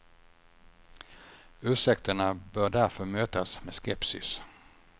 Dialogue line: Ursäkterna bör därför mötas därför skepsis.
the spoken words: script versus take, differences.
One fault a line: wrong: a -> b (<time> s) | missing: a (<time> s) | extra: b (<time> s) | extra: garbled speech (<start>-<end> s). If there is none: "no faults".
wrong: därför -> med (3.6 s)